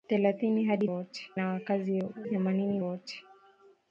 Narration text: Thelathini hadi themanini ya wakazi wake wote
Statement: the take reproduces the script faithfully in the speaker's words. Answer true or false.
false